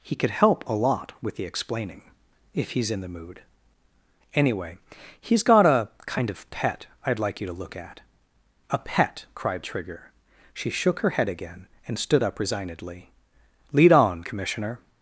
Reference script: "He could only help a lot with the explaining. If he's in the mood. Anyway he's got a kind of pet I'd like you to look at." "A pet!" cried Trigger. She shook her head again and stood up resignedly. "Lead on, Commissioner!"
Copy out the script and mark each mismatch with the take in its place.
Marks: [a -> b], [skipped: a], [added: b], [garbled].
"He could [skipped: only] help a lot with the explaining. If he's in the mood. Anyway he's got a kind of pet I'd like you to look at." "A pet!" cried Trigger. She shook her head again and stood up resignedly. "Lead on, Commissioner!"